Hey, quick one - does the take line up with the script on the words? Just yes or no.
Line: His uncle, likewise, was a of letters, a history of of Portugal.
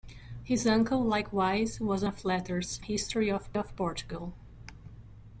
yes